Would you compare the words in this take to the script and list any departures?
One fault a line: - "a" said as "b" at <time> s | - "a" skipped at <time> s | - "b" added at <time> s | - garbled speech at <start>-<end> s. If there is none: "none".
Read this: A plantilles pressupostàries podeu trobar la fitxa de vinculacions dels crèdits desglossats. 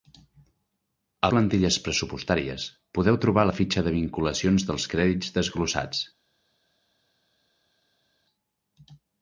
none